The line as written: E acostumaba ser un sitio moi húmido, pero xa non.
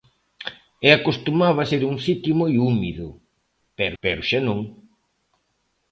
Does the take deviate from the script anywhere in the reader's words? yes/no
yes